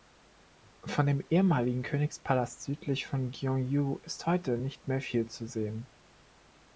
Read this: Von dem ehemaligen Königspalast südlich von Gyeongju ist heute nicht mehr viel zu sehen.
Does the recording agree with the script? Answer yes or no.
yes